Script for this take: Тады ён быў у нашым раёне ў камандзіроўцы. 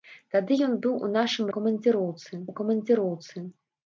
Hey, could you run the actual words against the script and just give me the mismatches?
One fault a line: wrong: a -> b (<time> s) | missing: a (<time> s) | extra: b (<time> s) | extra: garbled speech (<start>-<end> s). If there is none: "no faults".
wrong: раёне -> камандзіроўцы (1.6 s)